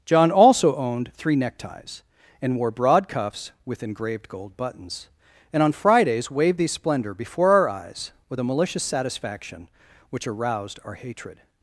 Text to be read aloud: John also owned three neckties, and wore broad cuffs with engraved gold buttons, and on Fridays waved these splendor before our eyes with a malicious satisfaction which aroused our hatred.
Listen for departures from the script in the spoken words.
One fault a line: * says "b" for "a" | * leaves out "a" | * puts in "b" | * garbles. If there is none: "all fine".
all fine